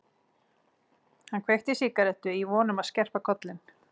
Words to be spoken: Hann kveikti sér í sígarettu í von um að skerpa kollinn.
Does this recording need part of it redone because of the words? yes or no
yes